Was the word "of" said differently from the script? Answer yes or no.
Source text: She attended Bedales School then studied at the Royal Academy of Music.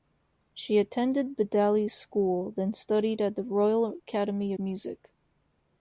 yes